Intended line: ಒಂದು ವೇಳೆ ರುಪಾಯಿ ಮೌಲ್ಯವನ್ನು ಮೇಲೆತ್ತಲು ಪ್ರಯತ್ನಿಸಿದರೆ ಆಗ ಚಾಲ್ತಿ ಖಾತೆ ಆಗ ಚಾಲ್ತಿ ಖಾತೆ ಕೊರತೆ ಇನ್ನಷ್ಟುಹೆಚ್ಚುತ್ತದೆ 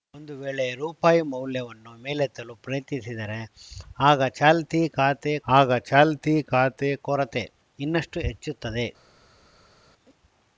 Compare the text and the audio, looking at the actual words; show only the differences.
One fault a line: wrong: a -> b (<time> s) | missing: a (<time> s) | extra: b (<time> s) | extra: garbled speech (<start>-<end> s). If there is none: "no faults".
no faults